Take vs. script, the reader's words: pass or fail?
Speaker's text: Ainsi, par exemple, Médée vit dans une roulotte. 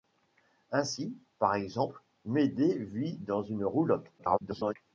fail